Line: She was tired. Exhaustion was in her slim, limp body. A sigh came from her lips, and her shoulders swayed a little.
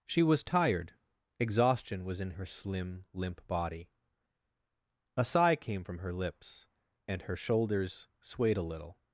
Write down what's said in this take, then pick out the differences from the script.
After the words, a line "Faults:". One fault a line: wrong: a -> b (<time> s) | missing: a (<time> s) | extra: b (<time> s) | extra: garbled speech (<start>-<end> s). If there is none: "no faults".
She was tired. Exhaustion was in her slim, limp body. A sigh came from her lips, and her shoulders swayed a little.
Faults:
no faults